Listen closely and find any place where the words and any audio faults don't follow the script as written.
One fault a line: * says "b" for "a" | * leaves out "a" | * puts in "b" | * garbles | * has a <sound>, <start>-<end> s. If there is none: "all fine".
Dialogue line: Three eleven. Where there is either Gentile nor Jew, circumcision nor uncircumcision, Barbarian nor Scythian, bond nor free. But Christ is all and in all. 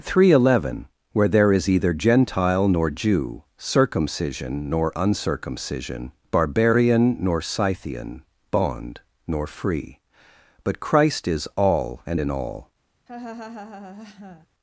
* has a laugh, 13.1-14.5 s